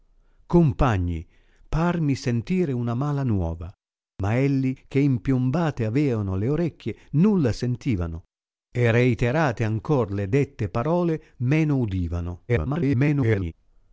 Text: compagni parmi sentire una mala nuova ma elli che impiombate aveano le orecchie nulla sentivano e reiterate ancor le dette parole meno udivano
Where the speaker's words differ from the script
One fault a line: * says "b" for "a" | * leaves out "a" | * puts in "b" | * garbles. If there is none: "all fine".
* garbles